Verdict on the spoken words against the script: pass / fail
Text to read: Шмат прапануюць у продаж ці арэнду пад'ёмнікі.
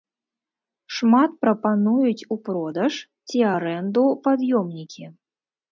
pass